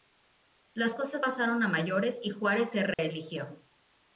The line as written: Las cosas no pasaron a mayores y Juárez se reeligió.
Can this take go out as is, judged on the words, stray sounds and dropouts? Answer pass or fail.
fail